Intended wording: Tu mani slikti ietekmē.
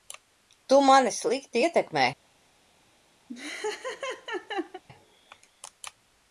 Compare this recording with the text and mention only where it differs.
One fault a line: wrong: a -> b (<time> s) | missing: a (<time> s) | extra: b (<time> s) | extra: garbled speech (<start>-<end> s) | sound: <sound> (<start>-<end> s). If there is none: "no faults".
sound: laugh (3.3-4.8 s)